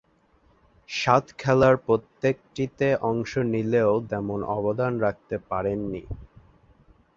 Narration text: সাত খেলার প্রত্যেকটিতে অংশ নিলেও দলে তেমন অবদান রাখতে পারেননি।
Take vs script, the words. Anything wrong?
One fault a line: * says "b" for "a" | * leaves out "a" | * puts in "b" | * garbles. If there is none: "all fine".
* leaves out "দলে"